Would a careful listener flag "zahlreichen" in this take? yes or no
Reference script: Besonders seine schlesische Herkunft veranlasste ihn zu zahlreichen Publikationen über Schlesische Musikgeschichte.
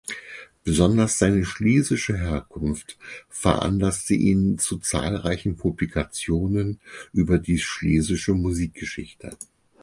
no